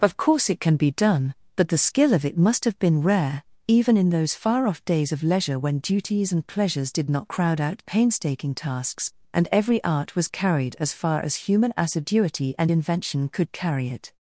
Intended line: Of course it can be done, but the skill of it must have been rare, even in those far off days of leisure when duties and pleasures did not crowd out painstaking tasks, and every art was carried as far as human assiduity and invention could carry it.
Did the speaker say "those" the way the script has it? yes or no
yes